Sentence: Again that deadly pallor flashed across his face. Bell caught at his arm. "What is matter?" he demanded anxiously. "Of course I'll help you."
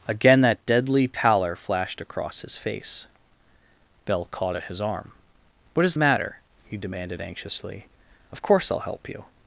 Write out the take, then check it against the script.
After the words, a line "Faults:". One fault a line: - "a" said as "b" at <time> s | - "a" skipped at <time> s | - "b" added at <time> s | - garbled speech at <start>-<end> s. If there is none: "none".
Again that deadly pallor flashed across his face. Bell caught at his arm. "What is matter?" he demanded anxiously. "Of course I'll help you."
Faults:
none